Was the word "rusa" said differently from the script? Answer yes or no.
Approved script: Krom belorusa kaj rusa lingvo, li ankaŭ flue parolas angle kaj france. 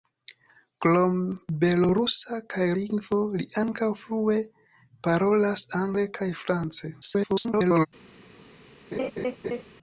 yes